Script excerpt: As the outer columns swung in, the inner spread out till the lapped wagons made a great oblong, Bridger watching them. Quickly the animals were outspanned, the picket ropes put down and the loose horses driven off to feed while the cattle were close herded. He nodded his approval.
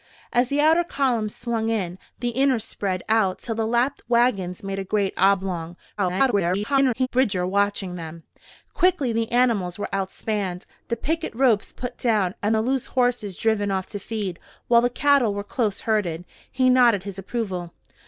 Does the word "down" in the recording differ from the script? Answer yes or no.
no